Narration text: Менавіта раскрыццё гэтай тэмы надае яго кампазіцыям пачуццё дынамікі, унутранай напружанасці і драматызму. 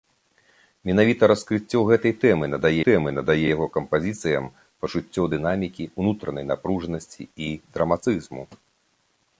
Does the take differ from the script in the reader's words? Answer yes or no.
yes